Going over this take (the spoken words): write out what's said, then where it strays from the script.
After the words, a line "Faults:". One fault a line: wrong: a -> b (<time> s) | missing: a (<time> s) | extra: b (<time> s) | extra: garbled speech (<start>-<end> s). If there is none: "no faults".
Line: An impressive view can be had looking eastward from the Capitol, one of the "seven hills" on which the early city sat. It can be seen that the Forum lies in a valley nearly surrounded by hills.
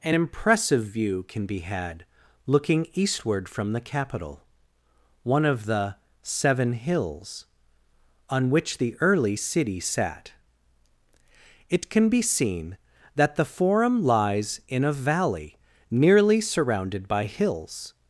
An impressive view can be had looking eastward from the Capitol, one of the "seven hills" on which the early city sat. It can be seen that the Forum lies in a valley nearly surrounded by hills.
Faults:
no faults